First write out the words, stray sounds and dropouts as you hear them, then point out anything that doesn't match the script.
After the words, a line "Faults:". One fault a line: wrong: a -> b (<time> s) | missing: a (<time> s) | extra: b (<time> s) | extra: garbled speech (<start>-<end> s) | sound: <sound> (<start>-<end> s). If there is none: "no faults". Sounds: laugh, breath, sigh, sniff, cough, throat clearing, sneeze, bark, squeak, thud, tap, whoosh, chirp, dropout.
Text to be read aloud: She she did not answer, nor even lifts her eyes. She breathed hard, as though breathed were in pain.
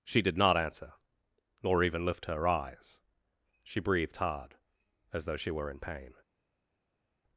She did not answer, nor even lift her eyes. She breathed hard, as though she were in pain.
Faults:
missing: she (0.2 s)
wrong: lifts -> lift (2.0 s)
wrong: breathed -> she (5.4 s)